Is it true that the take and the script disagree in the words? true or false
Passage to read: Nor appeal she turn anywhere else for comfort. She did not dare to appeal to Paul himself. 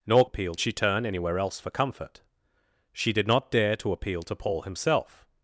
false